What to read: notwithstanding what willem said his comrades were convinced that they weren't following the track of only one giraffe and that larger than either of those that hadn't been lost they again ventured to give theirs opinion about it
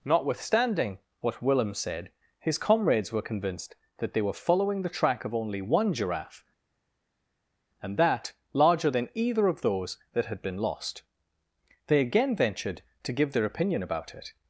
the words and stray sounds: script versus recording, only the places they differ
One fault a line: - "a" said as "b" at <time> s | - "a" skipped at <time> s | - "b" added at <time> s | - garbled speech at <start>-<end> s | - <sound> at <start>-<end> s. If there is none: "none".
- "weren't" said as "were" at 4.2 s
- "hadn't" said as "had" at 10.3 s
- "theirs" said as "their" at 13.3 s